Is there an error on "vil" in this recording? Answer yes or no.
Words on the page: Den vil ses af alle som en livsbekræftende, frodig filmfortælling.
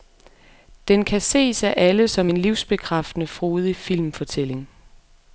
yes